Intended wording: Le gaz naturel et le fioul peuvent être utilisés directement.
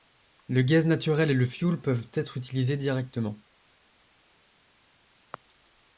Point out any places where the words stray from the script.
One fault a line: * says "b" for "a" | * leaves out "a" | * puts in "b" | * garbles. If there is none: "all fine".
all fine